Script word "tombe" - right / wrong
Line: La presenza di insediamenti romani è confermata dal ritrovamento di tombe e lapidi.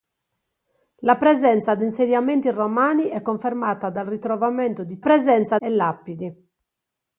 wrong